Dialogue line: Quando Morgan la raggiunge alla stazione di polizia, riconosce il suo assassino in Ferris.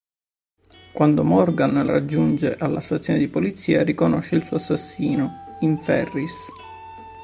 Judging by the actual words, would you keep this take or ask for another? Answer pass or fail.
fail